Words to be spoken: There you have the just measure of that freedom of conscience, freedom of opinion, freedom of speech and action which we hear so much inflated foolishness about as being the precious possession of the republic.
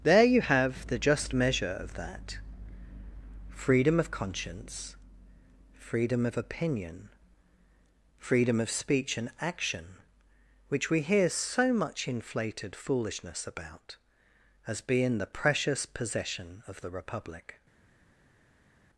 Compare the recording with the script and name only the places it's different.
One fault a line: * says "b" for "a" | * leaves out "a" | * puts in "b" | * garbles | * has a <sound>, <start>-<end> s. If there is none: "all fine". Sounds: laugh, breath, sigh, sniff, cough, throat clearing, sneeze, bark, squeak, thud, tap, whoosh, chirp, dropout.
all fine